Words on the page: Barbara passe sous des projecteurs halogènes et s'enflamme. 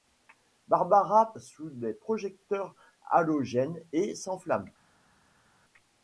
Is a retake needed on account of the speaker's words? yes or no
yes